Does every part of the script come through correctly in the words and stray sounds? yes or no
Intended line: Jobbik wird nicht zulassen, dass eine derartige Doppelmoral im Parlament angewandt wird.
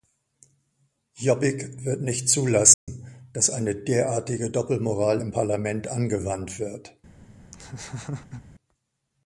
no